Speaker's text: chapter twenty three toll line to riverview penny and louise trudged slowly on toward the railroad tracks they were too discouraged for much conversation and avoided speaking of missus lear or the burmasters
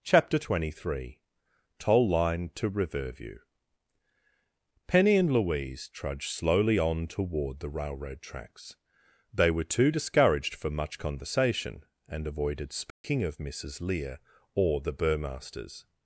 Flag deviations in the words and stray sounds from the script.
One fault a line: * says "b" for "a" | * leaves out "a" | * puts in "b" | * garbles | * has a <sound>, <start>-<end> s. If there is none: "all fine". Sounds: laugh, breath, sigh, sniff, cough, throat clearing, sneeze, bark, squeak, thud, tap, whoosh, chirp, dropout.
* has a dropout, 12.9-13.0 s